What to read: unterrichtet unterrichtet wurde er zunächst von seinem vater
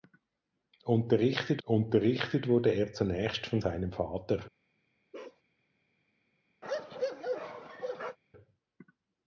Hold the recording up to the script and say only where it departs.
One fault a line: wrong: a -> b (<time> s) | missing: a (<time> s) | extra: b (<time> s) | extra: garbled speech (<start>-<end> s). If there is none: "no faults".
no faults